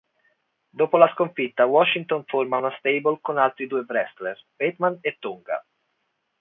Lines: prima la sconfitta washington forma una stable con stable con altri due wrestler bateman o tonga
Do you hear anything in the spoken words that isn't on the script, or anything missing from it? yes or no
yes